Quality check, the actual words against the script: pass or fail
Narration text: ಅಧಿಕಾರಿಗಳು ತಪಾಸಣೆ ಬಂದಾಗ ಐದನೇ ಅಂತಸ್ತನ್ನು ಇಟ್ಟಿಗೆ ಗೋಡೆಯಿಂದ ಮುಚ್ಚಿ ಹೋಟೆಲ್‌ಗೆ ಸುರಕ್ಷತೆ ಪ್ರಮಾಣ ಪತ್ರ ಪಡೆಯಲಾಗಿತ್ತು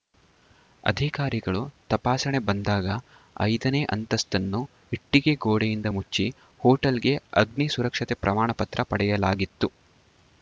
fail